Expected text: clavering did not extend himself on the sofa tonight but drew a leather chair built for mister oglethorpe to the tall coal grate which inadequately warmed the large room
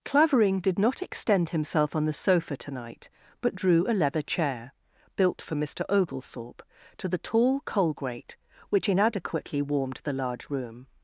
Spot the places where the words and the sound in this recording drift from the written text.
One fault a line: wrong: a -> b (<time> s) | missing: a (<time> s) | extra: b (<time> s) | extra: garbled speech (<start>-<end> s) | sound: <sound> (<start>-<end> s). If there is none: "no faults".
no faults